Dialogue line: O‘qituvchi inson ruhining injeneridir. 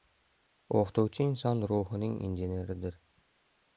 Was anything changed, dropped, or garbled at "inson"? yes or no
no